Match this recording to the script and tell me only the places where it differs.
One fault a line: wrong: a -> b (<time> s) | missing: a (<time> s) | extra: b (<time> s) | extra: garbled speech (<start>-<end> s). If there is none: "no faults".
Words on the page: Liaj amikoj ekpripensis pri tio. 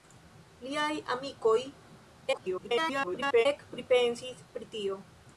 extra: garbled speech (2.3-3.5 s)